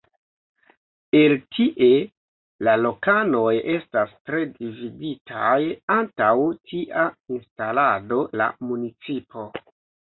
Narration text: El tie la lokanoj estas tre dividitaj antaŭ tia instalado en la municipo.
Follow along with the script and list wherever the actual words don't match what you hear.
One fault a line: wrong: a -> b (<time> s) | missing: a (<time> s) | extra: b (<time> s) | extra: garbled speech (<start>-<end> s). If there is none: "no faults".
missing: en (8.2 s)